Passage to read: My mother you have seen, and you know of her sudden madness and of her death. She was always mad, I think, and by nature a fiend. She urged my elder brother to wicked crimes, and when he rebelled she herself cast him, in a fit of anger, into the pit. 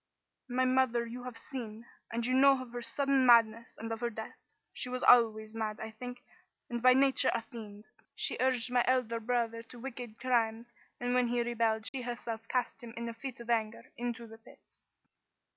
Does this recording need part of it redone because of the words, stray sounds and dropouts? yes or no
yes